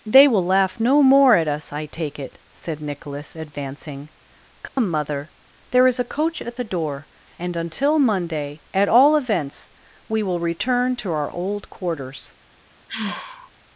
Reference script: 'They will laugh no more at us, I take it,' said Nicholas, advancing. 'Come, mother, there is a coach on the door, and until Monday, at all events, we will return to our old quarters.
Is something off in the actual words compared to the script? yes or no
yes